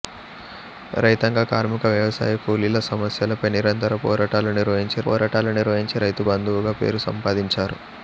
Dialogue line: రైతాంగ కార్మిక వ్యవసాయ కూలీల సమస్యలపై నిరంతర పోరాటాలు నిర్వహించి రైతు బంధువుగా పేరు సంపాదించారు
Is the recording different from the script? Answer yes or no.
yes